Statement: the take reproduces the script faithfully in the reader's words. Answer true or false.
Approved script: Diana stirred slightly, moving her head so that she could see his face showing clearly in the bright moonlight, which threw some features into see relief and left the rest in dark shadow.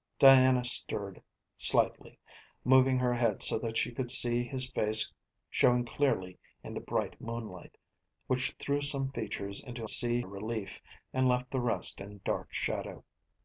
true